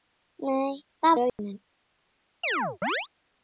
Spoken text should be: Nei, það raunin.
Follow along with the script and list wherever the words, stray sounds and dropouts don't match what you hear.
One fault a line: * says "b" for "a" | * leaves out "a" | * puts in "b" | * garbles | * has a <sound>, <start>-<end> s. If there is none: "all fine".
* has a dropout, 1.3-1.4 s
* has a chirp, 2.4-3.1 s